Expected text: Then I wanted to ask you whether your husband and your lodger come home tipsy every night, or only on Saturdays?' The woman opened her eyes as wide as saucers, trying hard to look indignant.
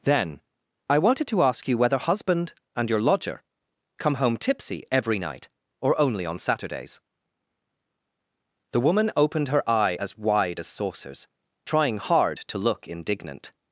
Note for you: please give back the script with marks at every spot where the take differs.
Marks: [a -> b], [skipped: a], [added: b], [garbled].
Then I wanted to ask you whether [skipped: your] husband and your lodger come home tipsy every night, or only on Saturdays?' The woman opened her [eyes -> eye] as wide as saucers, trying hard to look indignant.